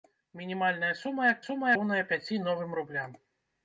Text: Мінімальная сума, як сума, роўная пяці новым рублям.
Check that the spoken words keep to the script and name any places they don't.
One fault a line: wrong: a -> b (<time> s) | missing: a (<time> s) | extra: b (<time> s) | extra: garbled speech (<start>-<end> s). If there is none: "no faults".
no faults